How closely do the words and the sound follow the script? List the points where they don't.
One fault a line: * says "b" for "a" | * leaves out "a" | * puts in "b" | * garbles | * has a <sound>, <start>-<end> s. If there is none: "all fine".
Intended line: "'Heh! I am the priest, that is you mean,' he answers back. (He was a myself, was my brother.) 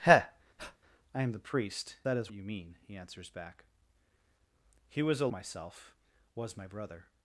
* has a breath, 0.6-0.8 s